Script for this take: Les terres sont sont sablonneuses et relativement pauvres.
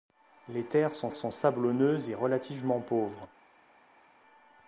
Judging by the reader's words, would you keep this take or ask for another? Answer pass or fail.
pass